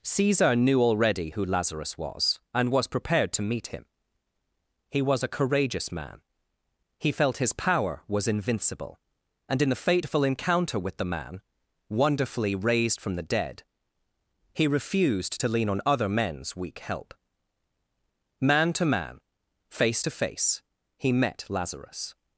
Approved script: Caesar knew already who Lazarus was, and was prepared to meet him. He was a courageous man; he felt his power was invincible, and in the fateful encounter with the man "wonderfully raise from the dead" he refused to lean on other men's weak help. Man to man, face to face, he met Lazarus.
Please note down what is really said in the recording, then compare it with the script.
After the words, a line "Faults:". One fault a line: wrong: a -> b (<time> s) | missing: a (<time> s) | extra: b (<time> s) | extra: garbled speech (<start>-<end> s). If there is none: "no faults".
Caesar knew already who Lazarus was, and was prepared to meet him. He was a courageous man; he felt his power was invincible, and in the fateful encounter with the man "wonderfully raised from the dead" he refused to lean on other men's weak help. Man to man, face to face, he met Lazarus.
Faults:
wrong: raise -> raised (12.5 s)